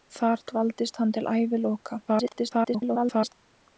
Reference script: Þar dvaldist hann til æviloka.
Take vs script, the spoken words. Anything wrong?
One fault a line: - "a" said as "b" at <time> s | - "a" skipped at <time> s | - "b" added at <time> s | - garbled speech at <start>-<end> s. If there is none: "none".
- garbled speech at 2.1-3.3 s